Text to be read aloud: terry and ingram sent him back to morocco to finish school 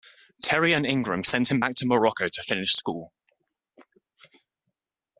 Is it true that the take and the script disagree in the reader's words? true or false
false